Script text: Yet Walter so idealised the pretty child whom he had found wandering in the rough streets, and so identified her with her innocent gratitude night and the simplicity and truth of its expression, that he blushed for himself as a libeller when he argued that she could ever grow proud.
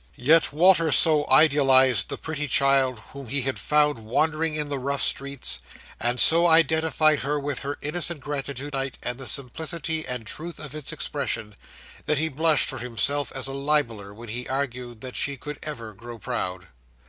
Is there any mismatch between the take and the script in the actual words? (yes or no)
no